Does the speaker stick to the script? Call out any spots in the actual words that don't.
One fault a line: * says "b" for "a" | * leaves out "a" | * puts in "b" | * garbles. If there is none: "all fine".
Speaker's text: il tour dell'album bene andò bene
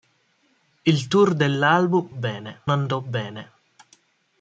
all fine